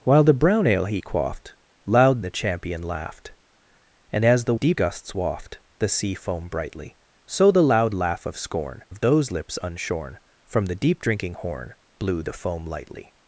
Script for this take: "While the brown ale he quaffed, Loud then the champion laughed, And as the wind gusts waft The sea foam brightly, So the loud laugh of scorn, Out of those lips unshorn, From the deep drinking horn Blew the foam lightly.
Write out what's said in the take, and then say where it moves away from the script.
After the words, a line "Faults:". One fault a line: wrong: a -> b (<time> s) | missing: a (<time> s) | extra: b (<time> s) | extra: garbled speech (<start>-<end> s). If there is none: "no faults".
"While the brown ale he quaffed, Loud the champion laughed, And as the deep gusts waft The sea foam brightly, So the loud laugh of scorn, Of those lips unshorn, From the deep drinking horn Blew the foam lightly.
Faults:
missing: then (2.2 s)
wrong: wind -> deep (4.5 s)
missing: Out (8.8 s)